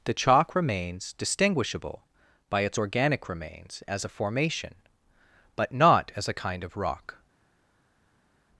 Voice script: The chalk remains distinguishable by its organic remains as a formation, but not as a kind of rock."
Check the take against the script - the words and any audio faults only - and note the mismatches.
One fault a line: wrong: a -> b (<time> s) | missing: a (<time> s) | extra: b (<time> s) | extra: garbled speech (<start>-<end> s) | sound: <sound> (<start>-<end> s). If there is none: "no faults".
no faults